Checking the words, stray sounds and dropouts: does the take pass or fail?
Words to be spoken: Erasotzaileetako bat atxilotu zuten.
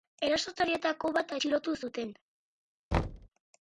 fail